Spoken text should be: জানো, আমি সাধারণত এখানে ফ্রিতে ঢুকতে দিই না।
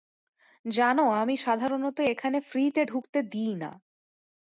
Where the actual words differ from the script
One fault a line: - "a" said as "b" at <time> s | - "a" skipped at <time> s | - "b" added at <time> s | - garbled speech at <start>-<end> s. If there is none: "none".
none